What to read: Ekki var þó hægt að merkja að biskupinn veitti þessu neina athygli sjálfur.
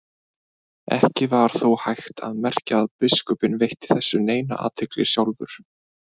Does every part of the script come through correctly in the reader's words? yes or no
yes